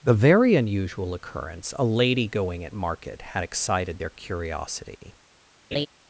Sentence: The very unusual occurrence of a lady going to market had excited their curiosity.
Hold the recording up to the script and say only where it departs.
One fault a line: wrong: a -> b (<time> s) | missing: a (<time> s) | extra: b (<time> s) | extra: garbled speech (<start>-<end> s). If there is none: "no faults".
missing: of (1.8 s)
wrong: to -> at (2.6 s)